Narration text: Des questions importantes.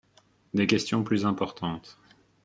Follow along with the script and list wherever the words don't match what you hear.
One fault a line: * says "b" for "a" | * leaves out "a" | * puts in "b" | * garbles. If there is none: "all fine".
* puts in "plus"